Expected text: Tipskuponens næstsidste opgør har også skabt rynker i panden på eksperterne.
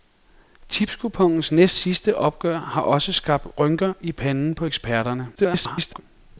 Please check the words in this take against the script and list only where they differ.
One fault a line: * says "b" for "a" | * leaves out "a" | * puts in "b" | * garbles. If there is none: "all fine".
* garbles